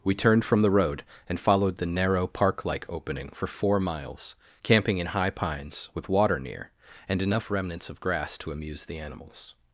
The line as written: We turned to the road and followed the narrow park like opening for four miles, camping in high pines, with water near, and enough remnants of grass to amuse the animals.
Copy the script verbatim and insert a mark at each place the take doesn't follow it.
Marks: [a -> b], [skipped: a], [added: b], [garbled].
We turned [to -> from] the road and followed the narrow park like opening for four miles, camping in high pines, with water near, and enough remnants of grass to amuse the animals.